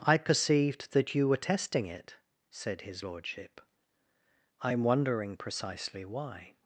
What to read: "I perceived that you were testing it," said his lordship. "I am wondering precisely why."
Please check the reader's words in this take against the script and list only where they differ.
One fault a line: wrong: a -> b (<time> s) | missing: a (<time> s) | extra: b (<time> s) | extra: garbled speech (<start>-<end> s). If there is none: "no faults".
no faults